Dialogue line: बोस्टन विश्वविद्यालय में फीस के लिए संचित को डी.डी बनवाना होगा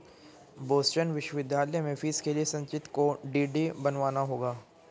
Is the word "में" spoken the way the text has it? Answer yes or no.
yes